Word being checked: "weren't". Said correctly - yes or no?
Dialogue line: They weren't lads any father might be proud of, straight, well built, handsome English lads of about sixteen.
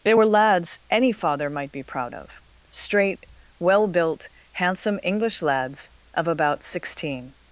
no